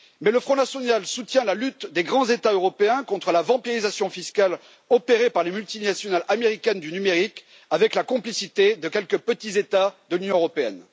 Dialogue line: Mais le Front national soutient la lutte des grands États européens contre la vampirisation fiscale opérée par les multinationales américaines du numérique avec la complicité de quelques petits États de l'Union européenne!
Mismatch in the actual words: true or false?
false